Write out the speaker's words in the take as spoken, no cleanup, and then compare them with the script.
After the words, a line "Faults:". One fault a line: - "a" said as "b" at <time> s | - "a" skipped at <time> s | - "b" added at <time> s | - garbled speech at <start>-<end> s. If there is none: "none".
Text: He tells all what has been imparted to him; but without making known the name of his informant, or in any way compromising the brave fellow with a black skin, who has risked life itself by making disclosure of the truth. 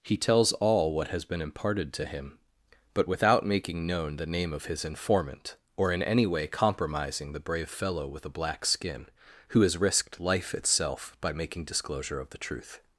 He tells all what has been imparted to him; but without making known the name of his informant, or in any way compromising the brave fellow with a black skin, who has risked life itself by making disclosure of the truth.
Faults:
none